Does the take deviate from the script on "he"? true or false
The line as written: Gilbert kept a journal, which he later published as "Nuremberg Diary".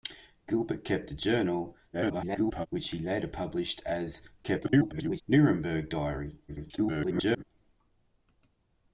false